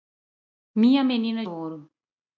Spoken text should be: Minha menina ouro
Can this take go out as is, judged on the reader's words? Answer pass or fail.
pass